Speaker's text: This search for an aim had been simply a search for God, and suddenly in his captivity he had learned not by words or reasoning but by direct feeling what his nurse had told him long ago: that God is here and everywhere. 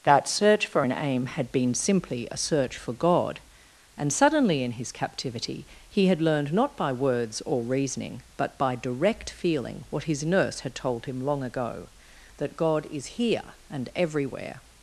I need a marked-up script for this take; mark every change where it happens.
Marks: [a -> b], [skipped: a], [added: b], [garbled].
[This -> That] search for an aim had been simply a search for God, and suddenly in his captivity he had learned not by words or reasoning but by direct feeling what his nurse had told him long ago: that God is here and everywhere.